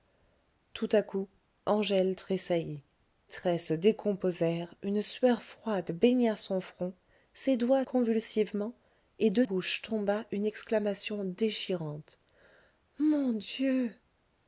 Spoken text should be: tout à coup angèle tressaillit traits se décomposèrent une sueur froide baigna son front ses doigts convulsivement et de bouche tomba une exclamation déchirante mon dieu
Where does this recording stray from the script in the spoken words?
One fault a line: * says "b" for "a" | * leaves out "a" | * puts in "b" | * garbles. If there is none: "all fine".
all fine